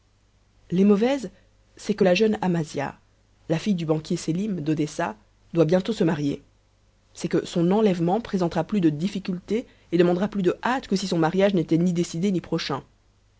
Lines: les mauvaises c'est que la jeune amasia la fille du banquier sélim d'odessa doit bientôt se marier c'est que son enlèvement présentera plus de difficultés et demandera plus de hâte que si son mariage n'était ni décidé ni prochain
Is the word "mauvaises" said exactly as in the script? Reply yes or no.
yes